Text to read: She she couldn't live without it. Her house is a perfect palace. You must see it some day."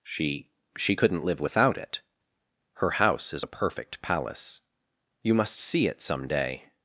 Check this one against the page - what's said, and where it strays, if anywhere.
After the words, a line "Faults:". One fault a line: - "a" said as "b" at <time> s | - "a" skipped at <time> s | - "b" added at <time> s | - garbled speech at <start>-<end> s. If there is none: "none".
She she couldn't live without it. Her house is a perfect palace. You must see it some day."
Faults:
none